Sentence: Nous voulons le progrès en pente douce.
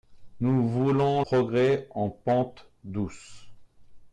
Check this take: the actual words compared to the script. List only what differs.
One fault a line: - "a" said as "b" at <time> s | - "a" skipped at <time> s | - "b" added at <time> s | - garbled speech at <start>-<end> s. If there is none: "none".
- "le" skipped at 1.2 s